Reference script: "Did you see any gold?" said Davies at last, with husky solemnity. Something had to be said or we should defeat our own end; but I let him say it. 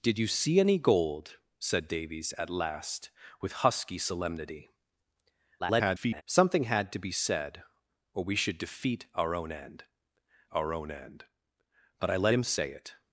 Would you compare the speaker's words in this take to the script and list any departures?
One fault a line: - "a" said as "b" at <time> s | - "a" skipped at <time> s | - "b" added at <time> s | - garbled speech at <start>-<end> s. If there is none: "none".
- garbled speech at 5.6-6.2 s
- "our own end" added at 10.5 s